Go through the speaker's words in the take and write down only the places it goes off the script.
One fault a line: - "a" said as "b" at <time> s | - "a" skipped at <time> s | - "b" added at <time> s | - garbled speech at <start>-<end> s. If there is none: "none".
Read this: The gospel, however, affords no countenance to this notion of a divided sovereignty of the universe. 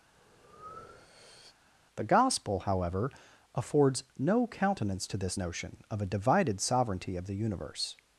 none